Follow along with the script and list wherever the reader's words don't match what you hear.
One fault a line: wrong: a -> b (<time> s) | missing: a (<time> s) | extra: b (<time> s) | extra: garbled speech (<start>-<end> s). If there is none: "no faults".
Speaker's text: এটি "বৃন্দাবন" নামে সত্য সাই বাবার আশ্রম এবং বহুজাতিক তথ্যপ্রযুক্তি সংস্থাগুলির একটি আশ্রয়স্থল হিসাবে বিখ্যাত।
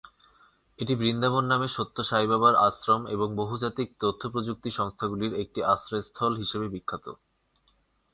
no faults